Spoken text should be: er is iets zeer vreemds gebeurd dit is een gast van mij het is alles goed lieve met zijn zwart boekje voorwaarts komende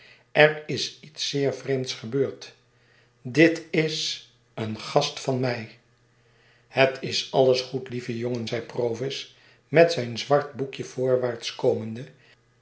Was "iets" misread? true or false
false